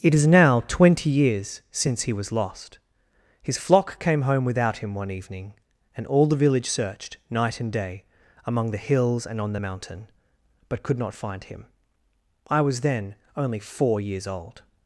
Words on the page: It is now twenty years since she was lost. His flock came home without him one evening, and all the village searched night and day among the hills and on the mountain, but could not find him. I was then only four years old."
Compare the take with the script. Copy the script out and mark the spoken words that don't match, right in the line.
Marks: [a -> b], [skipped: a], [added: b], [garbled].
It is now twenty years since [she -> he] was lost. His flock came home without him one evening, and all the village searched night and day among the hills and on the mountain, but could not find him. I was then only four years old."